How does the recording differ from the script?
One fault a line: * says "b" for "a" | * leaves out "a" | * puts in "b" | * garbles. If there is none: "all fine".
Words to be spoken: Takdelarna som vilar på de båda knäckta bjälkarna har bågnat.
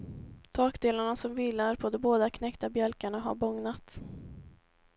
all fine